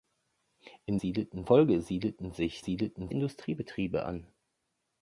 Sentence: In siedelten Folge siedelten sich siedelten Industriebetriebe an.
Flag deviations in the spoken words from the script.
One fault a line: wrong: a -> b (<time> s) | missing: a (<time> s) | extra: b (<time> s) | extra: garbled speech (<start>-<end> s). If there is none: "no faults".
no faults